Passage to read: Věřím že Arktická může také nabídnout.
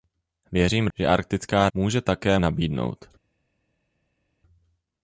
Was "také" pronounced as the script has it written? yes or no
yes